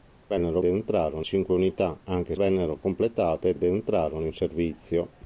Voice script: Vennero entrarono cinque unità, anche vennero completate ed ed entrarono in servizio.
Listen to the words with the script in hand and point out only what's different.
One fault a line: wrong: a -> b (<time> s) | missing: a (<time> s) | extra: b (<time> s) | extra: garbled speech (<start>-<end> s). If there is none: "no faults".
no faults